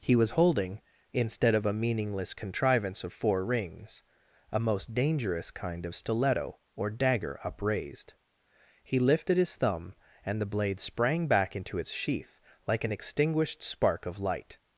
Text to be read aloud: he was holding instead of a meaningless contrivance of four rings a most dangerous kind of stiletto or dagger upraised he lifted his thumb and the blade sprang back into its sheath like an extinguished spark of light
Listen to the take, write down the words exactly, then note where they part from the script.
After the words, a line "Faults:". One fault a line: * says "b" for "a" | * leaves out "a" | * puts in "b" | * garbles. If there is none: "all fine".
he was holding instead of a meaningless contrivance of four rings a most dangerous kind of stiletto or dagger upraised he lifted his thumb and the blade sprang back into its sheath like an extinguished spark of light
Faults:
all fine